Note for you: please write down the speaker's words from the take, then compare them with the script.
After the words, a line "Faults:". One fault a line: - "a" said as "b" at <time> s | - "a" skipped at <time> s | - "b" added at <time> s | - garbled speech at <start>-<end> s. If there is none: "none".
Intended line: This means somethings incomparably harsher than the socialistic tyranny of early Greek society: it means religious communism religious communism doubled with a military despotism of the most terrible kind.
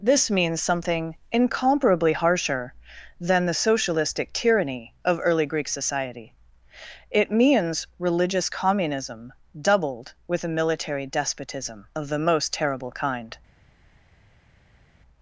This means something incomparably harsher than the socialistic tyranny of early Greek society: it means religious communism doubled with a military despotism of the most terrible kind.
Faults:
- "somethings" said as "something" at 0.6 s
- "religious communism" skipped at 9.3 s